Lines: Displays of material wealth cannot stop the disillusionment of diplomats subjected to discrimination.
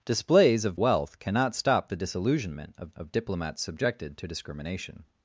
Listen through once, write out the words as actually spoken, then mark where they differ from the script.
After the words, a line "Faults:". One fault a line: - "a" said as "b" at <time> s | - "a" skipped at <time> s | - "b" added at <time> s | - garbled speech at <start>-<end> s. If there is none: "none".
Displays of wealth cannot stop the disillusionment of of diplomats subjected to discrimination.
Faults:
- "material" skipped at 0.8 s
- "of" added at 3.0 s